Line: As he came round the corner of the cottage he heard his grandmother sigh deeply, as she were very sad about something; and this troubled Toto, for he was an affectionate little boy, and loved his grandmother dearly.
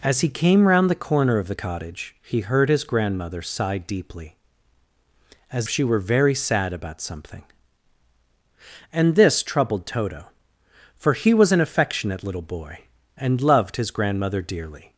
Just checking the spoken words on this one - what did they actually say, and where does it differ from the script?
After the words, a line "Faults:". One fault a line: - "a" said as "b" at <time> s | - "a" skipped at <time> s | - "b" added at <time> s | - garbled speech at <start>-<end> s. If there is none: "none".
As he came round the corner of the cottage he heard his grandmother sigh deeply, as she were very sad about something; and this troubled Toto, for he was an affectionate little boy, and loved his grandmother dearly.
Faults:
none